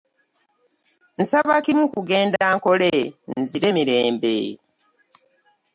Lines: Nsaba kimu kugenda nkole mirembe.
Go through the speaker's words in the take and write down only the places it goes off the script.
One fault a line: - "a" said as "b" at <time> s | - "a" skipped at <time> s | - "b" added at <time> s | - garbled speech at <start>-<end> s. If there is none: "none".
- "nzire" added at 3.4 s